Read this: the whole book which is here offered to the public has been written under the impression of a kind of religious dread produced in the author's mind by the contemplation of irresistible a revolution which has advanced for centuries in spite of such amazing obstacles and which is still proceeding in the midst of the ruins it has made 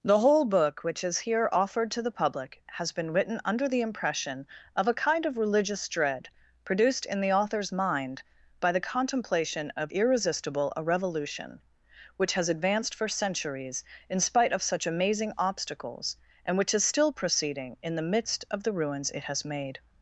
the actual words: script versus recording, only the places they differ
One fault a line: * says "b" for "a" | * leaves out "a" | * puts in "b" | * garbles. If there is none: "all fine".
all fine